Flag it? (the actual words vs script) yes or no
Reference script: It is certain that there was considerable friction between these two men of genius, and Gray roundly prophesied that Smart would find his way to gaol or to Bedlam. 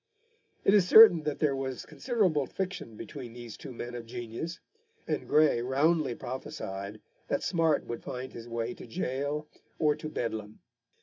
no